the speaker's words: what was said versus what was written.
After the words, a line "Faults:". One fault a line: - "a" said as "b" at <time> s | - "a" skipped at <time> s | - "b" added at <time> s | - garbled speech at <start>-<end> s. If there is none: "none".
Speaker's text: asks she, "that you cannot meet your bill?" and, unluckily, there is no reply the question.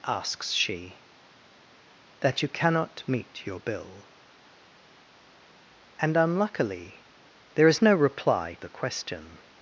asks she, "that you cannot meet your bill?" and, unluckily, there is no reply the question.
Faults:
none